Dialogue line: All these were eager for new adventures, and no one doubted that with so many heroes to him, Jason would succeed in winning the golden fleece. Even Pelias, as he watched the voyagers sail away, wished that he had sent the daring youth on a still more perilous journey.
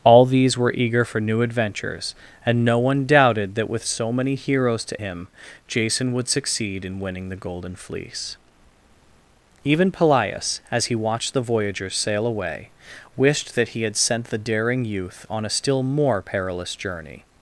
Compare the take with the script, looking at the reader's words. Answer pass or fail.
pass